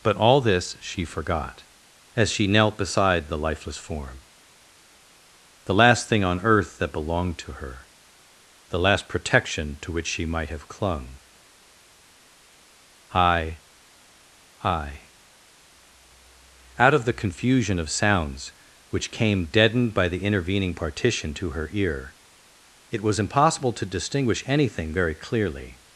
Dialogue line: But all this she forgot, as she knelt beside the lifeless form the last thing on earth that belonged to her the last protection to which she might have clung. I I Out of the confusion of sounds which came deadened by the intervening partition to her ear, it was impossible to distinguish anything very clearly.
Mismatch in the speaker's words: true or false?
false